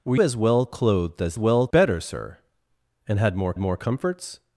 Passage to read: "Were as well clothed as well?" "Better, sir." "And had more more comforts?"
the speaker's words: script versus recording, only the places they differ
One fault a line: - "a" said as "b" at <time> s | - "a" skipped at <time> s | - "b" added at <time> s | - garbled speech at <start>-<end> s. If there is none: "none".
none